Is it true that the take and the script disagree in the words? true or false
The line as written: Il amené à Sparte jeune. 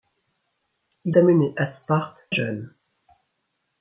false